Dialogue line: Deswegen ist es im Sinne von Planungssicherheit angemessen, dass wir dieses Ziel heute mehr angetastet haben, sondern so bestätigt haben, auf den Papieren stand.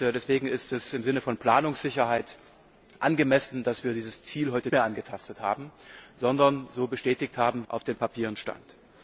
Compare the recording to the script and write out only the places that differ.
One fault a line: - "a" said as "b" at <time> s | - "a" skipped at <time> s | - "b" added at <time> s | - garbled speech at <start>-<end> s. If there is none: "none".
none